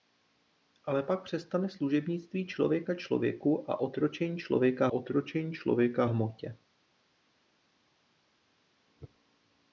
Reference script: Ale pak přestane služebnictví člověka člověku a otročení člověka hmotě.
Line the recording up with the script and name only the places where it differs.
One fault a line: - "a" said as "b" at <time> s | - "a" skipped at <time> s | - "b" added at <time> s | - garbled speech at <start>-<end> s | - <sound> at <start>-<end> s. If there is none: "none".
- "otročení člověka" added at 4.9 s